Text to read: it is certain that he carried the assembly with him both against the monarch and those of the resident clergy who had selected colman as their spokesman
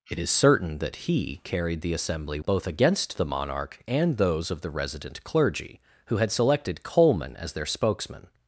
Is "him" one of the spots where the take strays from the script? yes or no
yes